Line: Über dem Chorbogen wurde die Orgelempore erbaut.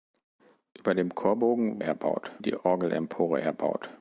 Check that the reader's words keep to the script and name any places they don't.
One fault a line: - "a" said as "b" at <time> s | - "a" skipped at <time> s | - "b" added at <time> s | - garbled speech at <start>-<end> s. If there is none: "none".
- "wurde" said as "erbaut" at 1.8 s